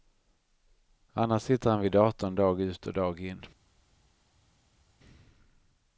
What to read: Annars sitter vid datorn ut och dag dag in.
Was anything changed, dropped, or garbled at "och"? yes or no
no